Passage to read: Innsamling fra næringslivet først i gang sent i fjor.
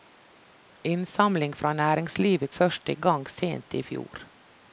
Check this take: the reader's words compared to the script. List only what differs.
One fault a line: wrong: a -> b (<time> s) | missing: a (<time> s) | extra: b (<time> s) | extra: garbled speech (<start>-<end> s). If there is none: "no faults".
no faults